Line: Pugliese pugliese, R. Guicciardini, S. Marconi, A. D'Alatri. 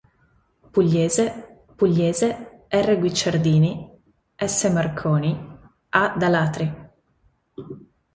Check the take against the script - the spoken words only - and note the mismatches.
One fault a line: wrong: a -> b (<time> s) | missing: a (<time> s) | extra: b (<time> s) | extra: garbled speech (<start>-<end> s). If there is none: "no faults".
no faults